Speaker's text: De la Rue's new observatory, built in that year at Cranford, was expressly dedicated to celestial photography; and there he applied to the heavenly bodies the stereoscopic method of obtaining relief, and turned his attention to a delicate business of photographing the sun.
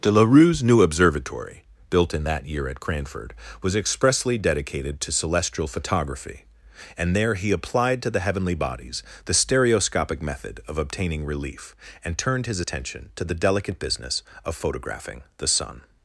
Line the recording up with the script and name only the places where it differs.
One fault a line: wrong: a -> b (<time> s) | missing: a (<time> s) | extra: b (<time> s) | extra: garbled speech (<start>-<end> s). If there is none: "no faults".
wrong: a -> the (13.2 s)